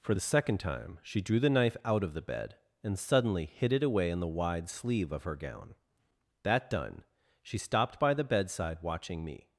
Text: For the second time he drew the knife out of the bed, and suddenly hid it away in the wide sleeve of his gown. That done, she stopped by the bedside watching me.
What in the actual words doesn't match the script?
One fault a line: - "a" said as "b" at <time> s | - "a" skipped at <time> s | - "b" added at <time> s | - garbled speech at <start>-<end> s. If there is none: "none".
- "he" said as "she" at 1.0 s
- "his" said as "her" at 5.2 s